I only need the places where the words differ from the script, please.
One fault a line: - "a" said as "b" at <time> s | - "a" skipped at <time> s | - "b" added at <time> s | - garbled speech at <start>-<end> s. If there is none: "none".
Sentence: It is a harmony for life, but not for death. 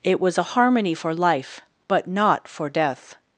- "is" said as "was" at 0.2 s